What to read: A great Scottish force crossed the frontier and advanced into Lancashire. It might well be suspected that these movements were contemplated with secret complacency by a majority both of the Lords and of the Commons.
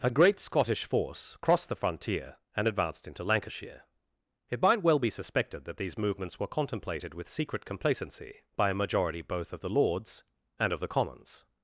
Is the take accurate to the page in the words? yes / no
yes